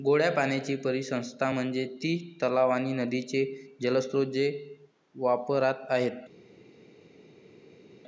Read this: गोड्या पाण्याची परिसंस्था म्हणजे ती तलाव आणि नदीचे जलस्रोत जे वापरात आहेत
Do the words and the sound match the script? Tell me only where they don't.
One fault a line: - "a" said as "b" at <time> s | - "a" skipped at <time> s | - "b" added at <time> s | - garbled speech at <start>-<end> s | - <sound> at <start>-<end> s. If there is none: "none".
none